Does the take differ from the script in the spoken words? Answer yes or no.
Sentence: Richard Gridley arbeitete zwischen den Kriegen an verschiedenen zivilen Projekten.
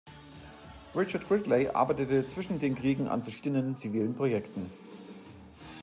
no